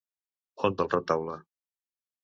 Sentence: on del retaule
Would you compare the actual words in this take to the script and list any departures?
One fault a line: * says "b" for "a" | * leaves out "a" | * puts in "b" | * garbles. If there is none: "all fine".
all fine